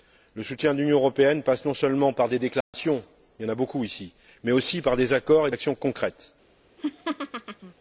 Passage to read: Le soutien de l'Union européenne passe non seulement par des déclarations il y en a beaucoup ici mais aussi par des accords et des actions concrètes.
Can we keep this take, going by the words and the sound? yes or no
no